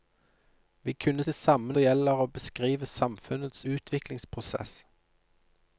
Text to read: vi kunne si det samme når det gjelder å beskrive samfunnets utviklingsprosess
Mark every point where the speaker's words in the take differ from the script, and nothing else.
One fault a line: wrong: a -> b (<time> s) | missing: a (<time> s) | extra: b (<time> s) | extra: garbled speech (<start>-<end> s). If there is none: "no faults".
missing: si (1.2 s)
missing: når (1.7 s)